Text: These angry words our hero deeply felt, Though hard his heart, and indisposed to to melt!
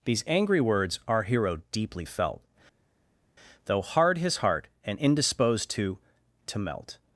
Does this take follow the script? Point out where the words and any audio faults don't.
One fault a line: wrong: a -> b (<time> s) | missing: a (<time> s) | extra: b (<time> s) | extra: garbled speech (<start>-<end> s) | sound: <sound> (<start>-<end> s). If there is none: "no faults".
no faults